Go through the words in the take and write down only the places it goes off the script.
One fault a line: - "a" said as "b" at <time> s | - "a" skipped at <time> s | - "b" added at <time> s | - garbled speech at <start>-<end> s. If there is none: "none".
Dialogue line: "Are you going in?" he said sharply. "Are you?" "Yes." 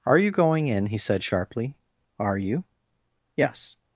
none